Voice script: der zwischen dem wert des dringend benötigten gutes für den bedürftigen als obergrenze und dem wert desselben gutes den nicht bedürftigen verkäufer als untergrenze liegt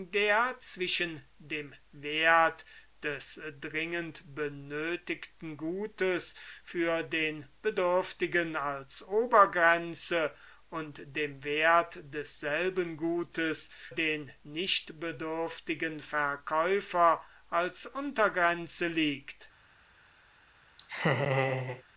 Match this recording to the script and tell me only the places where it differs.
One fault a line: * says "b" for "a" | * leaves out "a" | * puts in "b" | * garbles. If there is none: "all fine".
all fine